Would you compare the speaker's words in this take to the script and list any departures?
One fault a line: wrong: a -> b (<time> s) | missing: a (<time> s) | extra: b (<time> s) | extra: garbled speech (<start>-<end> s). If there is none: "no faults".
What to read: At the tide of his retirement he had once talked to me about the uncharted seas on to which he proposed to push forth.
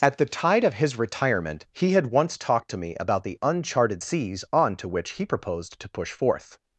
no faults